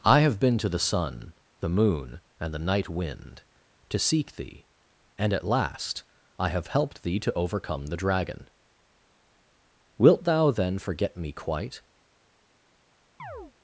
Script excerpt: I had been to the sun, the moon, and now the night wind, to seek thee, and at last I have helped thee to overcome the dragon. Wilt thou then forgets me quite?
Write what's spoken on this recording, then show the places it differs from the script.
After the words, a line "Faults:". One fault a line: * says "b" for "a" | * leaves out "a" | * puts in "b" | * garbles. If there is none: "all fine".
I have been to the sun, the moon, and the night wind, to seek thee, and at last I have helped thee to overcome the dragon. Wilt thou then forget me quite?
Faults:
* says "have" for "had"
* leaves out "now"
* says "forget" for "forgets"